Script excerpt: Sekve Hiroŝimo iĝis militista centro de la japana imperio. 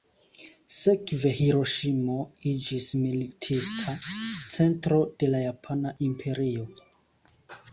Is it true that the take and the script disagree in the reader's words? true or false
false